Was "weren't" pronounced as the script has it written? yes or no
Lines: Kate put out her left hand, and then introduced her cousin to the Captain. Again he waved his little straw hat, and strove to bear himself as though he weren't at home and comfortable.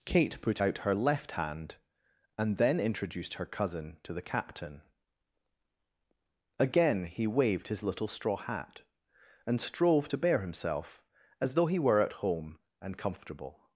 no